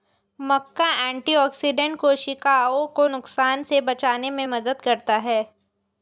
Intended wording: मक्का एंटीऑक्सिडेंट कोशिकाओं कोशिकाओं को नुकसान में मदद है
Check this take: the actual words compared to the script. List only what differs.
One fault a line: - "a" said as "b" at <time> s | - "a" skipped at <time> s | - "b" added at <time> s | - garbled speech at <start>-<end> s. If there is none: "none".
- "कोशिकाओं" skipped at 2.9 s
- "से बचाने" added at 3.6 s
- "करता" added at 4.8 s